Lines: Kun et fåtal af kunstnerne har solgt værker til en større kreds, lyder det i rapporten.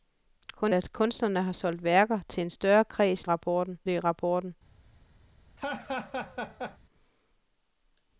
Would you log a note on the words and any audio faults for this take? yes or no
yes